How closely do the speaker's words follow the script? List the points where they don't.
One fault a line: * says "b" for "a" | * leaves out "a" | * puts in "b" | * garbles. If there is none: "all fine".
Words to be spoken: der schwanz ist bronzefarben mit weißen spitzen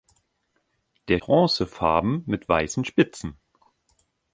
* leaves out "schwanz ist"